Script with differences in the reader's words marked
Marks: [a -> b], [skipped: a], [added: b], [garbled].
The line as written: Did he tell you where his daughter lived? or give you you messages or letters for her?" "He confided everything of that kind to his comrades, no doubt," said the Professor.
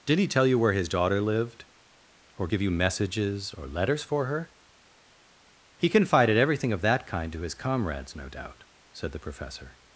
Did he tell you where his daughter lived? or give you [skipped: you] messages or letters for her?" "He confided everything of that kind to his comrades, no doubt," said the Professor.